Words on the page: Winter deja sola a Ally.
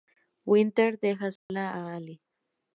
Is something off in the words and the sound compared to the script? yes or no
yes